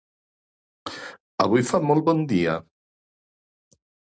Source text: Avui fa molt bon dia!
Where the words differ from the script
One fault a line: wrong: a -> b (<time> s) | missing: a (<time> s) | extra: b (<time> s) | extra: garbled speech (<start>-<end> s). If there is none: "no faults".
no faults